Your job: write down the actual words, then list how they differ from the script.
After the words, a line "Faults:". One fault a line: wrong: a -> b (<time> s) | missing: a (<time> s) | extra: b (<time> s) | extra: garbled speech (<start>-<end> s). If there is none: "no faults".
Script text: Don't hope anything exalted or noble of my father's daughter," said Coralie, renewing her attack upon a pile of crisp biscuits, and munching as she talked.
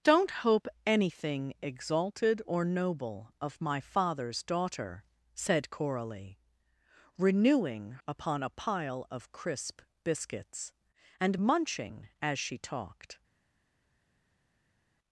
Don't hope anything exalted or noble of my father's daughter," said Coralie, renewing upon a pile of crisp biscuits, and munching as she talked.
Faults:
missing: her attack (7.9 s)